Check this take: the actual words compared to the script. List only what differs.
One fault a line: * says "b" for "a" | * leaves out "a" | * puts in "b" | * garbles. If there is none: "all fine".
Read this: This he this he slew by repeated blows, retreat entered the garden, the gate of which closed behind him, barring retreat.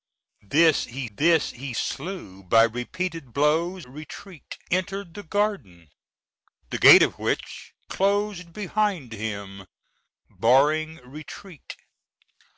all fine